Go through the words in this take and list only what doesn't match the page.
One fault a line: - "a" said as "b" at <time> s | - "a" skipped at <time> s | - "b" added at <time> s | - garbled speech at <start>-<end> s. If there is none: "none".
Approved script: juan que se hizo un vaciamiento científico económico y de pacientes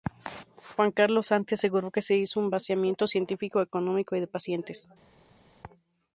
- "carlos santi aseguró" added at 0.9 s